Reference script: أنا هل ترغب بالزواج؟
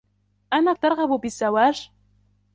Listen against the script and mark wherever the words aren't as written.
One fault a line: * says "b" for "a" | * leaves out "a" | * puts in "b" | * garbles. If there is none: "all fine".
all fine